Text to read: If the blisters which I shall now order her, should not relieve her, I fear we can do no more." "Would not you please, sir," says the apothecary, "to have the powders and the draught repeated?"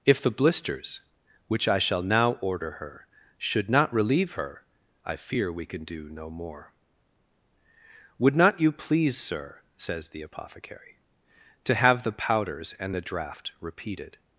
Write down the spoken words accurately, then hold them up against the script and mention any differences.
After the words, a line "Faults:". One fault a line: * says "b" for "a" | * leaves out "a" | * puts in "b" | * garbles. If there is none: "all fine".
If the blisters which I shall now order her, should not relieve her, I fear we can do no more." "Would not you please, sir," says the apothecary, "to have the powders and the draught repeated?"
Faults:
all fine